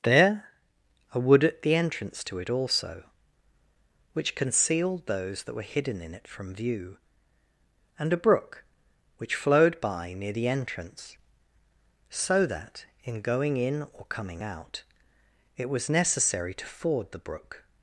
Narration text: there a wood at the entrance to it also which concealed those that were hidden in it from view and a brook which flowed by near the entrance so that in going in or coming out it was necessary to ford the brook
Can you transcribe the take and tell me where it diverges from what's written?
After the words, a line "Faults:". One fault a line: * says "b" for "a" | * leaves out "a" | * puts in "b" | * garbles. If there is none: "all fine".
there a wood at the entrance to it also which concealed those that were hidden in it from view and a brook which flowed by near the entrance so that in going in or coming out it was necessary to ford the brook
Faults:
all fine